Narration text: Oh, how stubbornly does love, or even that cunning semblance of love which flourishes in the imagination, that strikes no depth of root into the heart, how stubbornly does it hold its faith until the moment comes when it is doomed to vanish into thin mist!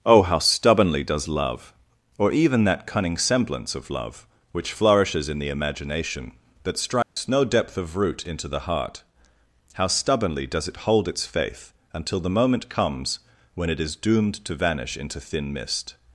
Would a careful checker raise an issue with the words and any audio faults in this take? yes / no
yes